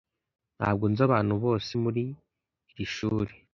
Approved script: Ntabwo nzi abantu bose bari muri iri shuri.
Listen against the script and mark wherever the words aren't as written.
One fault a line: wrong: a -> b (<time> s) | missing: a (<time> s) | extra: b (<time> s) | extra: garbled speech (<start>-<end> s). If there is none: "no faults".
missing: bari (1.7 s)